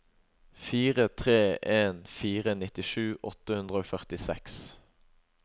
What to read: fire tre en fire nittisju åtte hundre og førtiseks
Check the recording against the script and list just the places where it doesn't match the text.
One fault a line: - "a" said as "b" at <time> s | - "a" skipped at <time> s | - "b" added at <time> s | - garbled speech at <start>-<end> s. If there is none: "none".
none